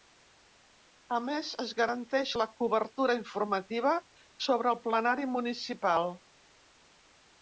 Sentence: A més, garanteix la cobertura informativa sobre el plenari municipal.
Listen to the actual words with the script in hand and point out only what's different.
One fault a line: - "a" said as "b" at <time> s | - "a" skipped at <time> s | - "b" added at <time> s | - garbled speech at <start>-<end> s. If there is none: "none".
- "es" added at 1.6 s